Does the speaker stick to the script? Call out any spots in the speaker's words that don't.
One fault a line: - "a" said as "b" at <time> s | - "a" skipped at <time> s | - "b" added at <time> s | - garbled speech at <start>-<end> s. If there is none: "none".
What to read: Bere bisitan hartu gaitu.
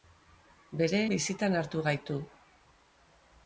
none